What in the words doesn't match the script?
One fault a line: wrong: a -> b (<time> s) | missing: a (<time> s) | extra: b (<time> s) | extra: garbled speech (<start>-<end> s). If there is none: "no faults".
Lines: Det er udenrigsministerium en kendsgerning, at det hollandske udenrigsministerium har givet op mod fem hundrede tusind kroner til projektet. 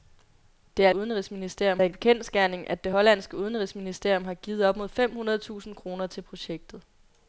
no faults